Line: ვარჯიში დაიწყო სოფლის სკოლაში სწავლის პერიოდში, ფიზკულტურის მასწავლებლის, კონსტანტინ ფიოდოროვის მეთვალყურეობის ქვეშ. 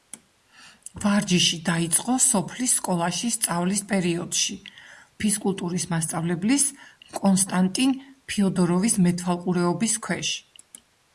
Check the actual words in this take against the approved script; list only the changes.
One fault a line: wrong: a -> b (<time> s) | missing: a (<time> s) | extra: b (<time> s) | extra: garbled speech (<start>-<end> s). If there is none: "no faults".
no faults